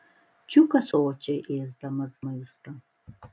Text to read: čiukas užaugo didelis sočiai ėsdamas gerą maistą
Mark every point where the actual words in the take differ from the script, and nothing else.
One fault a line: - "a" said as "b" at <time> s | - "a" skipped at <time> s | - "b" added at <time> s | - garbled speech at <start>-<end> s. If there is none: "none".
- "užaugo didelis" skipped at 0.9 s
- "gerą" skipped at 2.2 s